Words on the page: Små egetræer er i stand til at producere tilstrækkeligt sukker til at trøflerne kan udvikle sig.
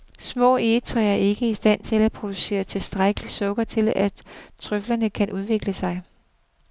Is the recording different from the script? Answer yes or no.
yes